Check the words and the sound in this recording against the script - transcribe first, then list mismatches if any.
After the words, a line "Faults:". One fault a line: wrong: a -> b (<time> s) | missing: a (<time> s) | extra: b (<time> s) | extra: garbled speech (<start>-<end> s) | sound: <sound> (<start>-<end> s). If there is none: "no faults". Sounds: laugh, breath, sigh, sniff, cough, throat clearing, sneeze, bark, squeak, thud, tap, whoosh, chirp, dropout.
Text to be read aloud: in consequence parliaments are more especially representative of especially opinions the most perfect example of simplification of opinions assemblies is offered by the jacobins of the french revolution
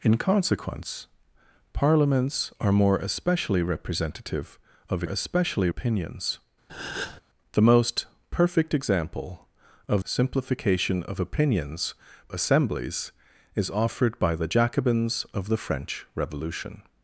in consequence parliaments are more especially representative of especially opinions the most perfect example of simplification of opinions assemblies is offered by the jacobins of the french revolution
Faults:
sound: breath (6.7-7.2 s)